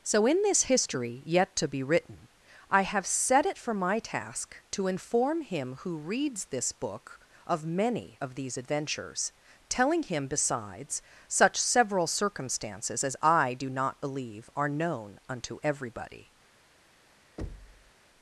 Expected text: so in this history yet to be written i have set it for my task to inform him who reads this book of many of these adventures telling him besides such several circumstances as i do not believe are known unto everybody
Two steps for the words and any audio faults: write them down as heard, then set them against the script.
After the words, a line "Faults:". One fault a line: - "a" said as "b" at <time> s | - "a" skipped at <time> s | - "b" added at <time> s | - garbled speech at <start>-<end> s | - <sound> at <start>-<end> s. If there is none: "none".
so in this history yet to be written i have set it for my task to inform him who reads this book of many of these adventures telling him besides such several circumstances as i do not believe are known unto everybody
Faults:
- thud at 17.4-17.9 s